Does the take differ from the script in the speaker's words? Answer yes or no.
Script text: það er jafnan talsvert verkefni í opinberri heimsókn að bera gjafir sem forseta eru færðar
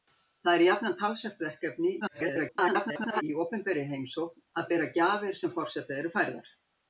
yes